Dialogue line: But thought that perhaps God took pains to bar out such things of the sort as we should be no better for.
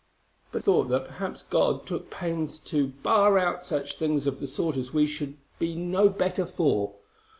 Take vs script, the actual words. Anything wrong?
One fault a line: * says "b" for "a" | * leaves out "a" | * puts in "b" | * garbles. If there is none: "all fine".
all fine